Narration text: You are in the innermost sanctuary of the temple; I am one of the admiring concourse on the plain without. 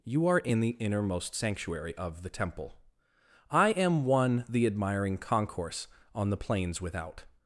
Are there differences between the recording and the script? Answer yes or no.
yes